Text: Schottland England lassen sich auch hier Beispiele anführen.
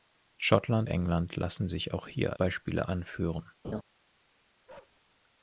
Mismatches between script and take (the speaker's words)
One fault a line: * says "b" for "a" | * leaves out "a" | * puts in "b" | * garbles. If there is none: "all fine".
all fine